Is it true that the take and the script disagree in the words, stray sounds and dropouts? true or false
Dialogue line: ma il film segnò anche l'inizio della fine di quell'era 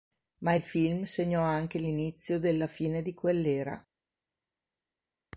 false